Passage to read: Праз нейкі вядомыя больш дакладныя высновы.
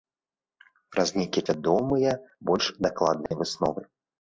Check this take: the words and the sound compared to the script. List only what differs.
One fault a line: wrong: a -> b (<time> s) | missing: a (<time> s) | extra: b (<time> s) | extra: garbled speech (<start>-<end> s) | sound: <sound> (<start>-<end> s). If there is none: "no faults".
sound: dropout (3.3-3.3 s)